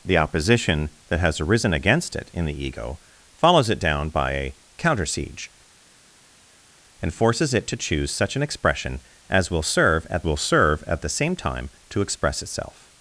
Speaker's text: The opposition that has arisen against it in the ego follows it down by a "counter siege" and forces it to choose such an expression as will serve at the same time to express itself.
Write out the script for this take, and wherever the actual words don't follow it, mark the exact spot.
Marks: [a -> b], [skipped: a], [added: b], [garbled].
The opposition that has arisen against it in the ego follows it down by a "counter siege" and forces it to choose such an expression as will serve at [added: will serve at] the same time to express itself.